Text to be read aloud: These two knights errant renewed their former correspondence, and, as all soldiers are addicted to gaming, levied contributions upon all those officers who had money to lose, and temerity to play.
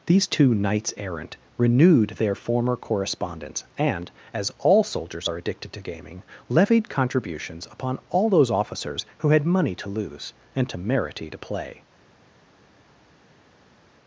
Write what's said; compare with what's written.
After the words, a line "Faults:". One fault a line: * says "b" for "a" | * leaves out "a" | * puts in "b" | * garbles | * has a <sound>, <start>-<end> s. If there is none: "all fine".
These two knights errant renewed their former correspondence, and, as all soldiers are addicted to gaming, levied contributions upon all those officers who had money to lose, and temerity to play.
Faults:
all fine